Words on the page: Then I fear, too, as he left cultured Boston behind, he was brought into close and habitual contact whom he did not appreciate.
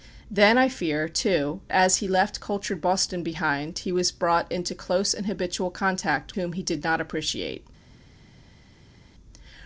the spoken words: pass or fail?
pass